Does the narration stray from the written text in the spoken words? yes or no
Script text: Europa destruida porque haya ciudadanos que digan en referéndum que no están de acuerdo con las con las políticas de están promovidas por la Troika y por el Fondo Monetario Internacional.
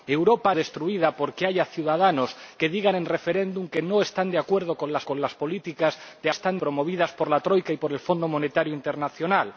no